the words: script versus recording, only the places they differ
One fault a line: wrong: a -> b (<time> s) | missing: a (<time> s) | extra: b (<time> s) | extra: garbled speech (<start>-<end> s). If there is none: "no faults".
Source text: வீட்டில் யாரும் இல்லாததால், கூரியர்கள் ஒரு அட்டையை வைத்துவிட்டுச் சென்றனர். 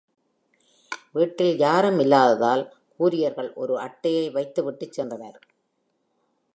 no faults